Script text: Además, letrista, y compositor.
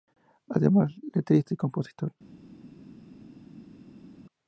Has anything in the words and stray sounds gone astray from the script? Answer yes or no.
no